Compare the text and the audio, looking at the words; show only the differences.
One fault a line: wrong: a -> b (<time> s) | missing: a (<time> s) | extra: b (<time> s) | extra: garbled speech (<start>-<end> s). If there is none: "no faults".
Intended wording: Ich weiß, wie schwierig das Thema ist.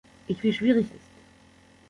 missing: weiß (0.4 s)
missing: das Thema (0.9 s)